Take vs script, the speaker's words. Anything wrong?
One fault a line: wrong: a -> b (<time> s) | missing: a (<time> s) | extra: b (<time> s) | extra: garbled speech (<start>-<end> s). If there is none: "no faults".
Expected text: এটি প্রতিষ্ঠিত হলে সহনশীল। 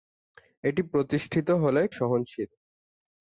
no faults